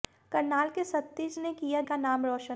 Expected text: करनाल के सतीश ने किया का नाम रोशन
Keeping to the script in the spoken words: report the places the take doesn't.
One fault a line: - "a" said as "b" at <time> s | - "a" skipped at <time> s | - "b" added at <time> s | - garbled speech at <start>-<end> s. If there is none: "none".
none